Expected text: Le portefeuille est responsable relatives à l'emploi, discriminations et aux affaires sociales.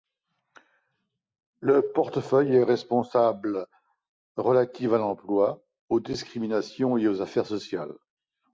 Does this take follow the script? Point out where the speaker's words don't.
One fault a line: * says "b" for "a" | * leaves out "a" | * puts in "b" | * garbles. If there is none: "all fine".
* puts in "aux"